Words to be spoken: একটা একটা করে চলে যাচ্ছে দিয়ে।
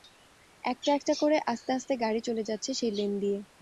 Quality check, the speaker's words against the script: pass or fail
fail